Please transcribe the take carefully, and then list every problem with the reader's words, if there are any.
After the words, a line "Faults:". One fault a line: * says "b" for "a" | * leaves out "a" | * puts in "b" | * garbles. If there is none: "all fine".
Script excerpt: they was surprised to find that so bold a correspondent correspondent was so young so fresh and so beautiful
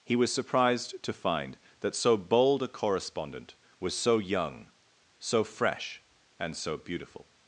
he was surprised to find that so bold a correspondent was so young so fresh and so beautiful
Faults:
* says "he" for "they"
* leaves out "correspondent"